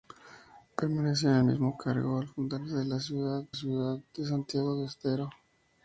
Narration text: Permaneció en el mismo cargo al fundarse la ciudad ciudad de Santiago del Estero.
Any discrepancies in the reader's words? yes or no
no